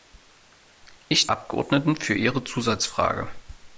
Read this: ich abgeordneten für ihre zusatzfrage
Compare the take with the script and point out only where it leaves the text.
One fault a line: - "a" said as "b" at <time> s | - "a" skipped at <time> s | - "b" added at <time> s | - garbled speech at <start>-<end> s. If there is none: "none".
none